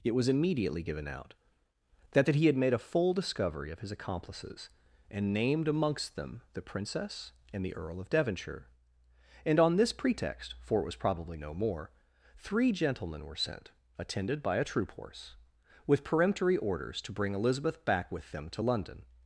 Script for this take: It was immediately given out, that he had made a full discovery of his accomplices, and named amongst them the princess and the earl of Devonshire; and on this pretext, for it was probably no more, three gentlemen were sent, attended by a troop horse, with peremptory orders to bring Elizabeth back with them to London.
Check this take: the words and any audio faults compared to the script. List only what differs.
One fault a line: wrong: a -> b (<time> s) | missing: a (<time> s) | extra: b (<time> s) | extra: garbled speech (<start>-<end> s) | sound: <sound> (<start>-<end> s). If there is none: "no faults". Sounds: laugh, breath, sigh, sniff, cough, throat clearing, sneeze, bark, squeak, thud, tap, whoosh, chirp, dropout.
extra: that (2.2 s)